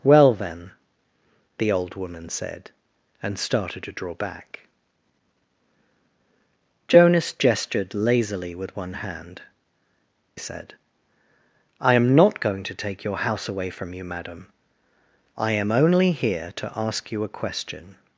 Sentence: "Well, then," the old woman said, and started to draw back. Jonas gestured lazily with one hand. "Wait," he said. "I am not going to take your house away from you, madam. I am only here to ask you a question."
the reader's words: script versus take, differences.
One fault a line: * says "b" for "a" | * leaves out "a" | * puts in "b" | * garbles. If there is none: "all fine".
* leaves out "Wait he"